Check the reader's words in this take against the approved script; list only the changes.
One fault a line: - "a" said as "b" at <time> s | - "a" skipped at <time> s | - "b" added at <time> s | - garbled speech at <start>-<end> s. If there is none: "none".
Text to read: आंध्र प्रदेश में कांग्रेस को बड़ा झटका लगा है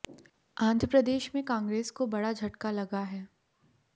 none